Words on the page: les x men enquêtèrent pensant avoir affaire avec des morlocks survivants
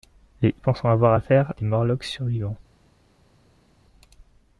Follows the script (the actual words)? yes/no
no